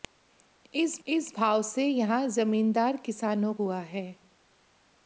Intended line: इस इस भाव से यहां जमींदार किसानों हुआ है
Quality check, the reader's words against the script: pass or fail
pass